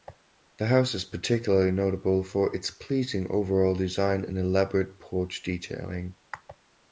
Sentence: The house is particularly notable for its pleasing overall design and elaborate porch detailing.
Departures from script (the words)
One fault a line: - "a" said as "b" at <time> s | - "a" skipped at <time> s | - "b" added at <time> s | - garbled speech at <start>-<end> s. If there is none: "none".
none